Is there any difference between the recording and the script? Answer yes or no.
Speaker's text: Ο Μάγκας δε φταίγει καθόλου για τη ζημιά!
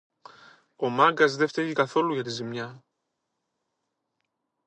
no